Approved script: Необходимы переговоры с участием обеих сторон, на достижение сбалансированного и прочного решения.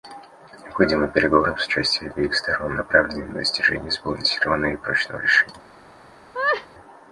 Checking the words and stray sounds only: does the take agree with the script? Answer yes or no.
no